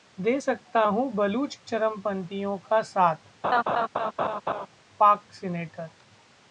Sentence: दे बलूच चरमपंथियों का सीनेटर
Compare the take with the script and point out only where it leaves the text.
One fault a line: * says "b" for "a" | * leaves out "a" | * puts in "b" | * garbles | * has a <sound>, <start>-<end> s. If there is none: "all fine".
* puts in "सकता हूं"
* puts in "साथ पाक"
* has a laugh, 3.4-4.7 s